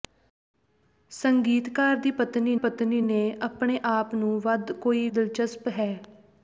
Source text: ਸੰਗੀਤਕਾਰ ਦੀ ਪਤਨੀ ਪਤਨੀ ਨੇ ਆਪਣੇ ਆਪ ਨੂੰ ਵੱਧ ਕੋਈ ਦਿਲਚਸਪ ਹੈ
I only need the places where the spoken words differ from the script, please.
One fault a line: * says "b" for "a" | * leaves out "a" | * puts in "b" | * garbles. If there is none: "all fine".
all fine